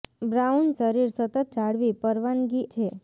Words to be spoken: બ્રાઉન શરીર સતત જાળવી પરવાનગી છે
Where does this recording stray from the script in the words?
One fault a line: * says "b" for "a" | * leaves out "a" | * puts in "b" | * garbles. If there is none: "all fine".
all fine